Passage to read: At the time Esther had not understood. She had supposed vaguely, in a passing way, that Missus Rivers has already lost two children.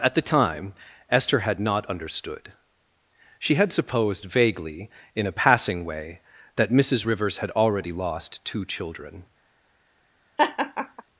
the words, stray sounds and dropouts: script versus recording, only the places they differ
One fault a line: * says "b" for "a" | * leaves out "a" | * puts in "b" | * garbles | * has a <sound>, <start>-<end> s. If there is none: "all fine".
* says "had" for "has"
* has a laugh, 10.4-11.0 s